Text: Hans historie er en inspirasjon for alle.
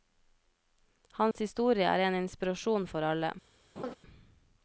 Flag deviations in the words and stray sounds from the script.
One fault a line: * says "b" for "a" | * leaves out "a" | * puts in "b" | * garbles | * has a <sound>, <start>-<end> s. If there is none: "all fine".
* has a dropout, 1.3-1.4 s
* has a laugh, 3.8-4.0 s